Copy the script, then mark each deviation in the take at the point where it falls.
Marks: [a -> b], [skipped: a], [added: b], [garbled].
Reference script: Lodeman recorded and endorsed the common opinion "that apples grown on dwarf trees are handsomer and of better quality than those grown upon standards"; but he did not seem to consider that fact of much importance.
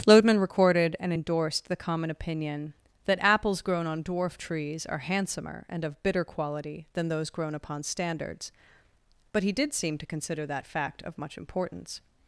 Lodeman recorded and endorsed the common opinion "that apples grown on dwarf trees are handsomer and of [better -> bitter] quality than those grown upon standards"; but he did [skipped: not] seem to consider that fact of much importance.